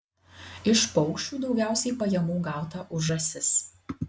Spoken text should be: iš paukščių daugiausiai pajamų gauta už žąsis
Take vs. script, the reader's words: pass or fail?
pass